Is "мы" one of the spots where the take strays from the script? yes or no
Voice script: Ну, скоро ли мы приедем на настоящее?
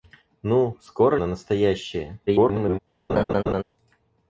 yes